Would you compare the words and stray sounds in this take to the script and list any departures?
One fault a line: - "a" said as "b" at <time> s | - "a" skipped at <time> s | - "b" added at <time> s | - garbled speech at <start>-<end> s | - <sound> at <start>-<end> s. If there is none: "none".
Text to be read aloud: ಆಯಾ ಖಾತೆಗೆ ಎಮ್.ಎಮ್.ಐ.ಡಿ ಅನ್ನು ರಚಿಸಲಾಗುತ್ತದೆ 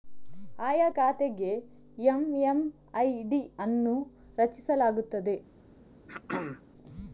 - throat clearing at 6.1-6.6 s